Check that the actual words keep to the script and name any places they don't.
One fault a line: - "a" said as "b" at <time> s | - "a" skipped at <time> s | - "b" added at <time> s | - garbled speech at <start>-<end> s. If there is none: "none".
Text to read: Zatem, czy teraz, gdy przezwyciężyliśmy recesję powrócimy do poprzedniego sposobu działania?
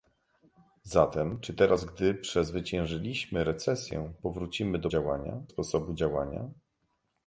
- "poprzedniego" said as "działania" at 4.9 s